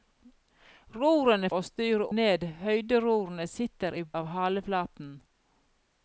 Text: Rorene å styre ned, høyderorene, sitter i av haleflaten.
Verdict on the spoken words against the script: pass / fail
pass